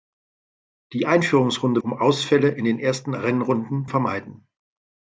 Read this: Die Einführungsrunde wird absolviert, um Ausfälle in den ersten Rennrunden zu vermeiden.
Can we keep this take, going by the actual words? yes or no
no